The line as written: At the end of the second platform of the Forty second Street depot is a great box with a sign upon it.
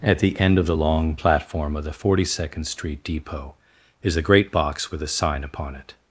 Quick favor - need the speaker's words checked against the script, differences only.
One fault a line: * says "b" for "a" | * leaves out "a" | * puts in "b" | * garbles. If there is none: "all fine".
* says "long" for "second"